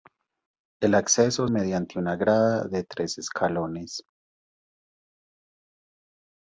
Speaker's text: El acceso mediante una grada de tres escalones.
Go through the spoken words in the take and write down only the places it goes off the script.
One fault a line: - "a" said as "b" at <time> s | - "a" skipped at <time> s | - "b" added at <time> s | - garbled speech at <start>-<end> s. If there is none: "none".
none